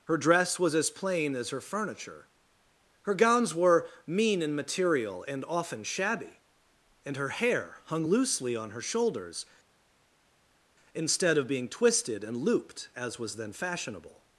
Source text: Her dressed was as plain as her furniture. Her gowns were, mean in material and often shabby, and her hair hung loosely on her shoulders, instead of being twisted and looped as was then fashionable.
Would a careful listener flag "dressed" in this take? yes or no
yes